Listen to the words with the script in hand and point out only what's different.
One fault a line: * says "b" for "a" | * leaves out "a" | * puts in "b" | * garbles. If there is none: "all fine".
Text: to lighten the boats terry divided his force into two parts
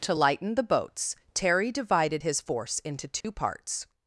all fine